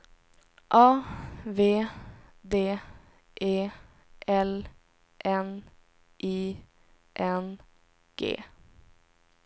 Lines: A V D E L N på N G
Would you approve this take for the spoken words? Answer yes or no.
no